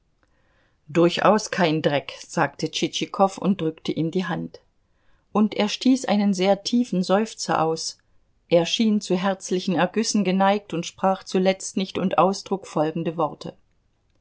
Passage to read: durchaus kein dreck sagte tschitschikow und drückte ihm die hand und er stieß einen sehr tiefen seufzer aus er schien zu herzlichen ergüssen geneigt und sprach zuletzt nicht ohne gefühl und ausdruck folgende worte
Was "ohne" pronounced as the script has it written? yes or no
no